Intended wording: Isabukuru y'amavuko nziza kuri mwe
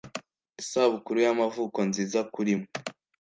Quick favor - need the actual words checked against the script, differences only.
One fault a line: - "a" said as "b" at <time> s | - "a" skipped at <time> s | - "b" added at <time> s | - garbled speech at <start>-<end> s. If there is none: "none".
none